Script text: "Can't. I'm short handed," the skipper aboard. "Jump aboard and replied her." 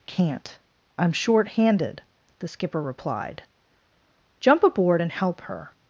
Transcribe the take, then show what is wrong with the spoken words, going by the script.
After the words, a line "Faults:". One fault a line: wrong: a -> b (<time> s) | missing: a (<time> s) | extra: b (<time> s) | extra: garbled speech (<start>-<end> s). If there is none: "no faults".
"Can't. I'm short handed," the skipper replied. "Jump aboard and help her."
Faults:
wrong: aboard -> replied (2.8 s)
wrong: replied -> help (5.1 s)